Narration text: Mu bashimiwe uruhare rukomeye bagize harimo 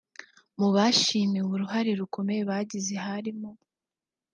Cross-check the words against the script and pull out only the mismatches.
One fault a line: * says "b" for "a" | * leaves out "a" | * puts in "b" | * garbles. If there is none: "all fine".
all fine